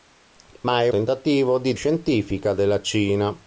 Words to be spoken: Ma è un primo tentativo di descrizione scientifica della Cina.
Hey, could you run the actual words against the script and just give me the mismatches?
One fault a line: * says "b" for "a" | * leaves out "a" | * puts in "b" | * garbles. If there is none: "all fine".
* leaves out "un primo"
* leaves out "descrizione"